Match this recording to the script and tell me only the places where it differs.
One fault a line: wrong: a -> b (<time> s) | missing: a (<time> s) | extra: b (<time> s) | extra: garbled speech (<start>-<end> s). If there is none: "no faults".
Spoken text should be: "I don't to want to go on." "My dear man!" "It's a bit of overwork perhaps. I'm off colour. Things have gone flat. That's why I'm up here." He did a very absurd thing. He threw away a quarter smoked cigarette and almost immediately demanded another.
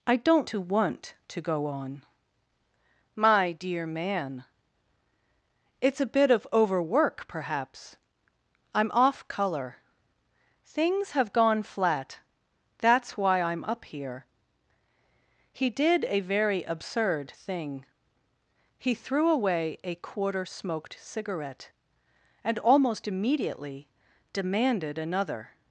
no faults